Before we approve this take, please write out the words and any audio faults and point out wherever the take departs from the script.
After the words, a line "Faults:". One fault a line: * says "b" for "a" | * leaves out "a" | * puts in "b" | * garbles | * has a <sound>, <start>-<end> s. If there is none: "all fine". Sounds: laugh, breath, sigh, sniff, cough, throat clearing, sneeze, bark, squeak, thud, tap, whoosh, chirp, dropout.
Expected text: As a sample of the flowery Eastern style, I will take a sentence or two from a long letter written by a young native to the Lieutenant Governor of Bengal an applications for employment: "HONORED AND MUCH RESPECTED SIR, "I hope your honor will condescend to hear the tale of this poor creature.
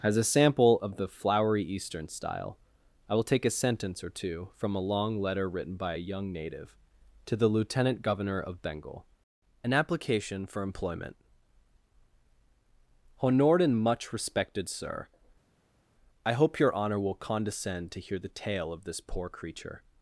As a sample of the flowery Eastern style, I will take a sentence or two from a long letter written by a young native to the Lieutenant Governor of Bengal an application for employment: "HONORED AND MUCH RESPECTED SIR, "I hope your honor will condescend to hear the tale of this poor creature.
Faults:
* says "application" for "applications"